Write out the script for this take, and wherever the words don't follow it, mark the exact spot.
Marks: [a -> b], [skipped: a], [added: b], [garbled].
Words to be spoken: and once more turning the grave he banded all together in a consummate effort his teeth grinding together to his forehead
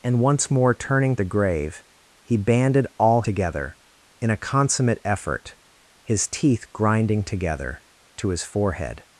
and once more turning the grave he banded all together in a consummate effort his teeth grinding together to his forehead